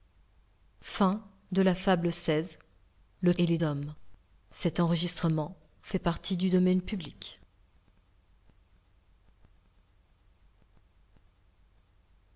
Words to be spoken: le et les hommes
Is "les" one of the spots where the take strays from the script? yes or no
no